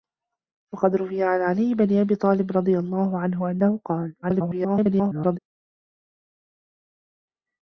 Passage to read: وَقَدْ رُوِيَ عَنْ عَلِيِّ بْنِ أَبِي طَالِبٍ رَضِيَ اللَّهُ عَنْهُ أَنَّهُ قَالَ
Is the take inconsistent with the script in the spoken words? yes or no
yes